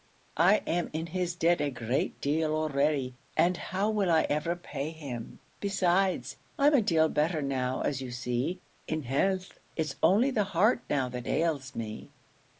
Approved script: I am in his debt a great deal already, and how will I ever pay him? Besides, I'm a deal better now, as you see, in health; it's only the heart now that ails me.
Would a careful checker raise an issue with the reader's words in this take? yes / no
no